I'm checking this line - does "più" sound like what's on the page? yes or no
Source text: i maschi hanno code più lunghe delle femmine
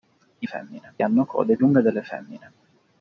no